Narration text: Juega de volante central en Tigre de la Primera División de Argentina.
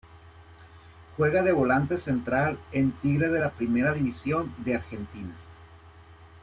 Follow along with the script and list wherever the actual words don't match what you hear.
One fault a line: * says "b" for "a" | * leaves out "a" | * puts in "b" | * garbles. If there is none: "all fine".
all fine